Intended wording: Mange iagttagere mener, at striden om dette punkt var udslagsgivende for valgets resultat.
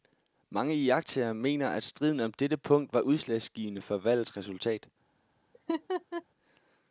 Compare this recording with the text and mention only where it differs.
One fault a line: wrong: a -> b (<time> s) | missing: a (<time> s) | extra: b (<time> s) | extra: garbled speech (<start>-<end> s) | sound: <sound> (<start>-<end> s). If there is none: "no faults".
sound: laugh (5.5-6.2 s)